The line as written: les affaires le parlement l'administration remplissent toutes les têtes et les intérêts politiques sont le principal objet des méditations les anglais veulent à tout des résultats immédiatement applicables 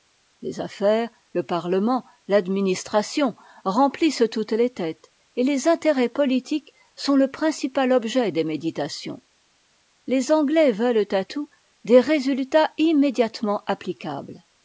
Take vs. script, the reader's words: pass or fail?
pass